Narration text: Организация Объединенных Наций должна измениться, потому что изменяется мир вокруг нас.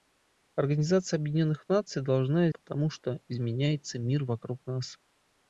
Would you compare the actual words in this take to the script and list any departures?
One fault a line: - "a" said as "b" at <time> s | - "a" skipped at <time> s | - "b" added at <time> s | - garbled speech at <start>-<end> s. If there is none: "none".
- "измениться" skipped at 2.5 s